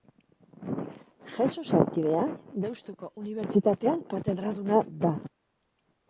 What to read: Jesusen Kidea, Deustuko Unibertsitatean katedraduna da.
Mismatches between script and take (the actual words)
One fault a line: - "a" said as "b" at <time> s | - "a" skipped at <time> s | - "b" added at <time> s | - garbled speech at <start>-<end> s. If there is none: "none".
none